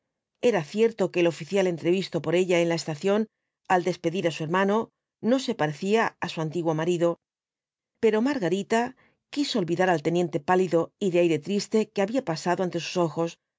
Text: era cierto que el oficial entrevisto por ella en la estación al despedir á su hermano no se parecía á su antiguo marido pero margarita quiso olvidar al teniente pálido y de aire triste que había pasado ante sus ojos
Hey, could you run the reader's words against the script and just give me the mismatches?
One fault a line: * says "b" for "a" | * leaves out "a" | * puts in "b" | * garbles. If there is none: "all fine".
all fine